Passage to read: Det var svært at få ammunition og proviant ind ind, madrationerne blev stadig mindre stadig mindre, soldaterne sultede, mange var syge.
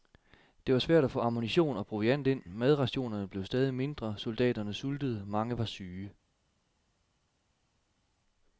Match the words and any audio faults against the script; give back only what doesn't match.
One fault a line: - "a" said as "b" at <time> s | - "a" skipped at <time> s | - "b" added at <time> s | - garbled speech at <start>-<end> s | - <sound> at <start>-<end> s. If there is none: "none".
- "ind" skipped at 2.4 s
- "stadig mindre" skipped at 4.2 s